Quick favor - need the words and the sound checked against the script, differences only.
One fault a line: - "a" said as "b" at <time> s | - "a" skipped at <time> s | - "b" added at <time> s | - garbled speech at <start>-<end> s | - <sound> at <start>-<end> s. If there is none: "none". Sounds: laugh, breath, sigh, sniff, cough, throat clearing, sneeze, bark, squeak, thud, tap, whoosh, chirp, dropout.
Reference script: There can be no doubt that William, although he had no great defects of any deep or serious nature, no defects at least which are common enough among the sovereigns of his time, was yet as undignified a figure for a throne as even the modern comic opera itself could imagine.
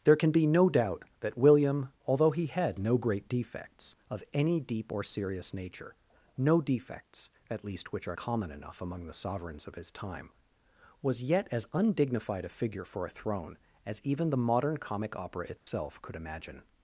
- dropout at 15.6-15.7 s